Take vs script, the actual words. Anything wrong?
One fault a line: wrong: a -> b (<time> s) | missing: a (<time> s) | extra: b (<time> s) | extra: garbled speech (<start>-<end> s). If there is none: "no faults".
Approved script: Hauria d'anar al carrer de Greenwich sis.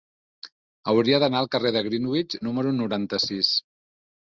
extra: número noranta (2.5 s)